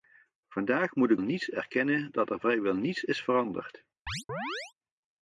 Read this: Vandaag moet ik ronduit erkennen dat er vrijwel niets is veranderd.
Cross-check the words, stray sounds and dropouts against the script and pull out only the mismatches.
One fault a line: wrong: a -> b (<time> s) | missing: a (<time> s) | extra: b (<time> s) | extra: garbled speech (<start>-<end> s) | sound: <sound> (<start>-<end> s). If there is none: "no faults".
wrong: ronduit -> niets (1.2 s)
sound: chirp (4.1-4.7 s)